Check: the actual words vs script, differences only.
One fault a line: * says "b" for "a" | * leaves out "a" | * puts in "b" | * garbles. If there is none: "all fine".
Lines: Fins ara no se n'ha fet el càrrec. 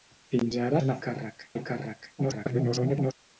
* leaves out "no"
* says "càrrec" for "fet"
* garbles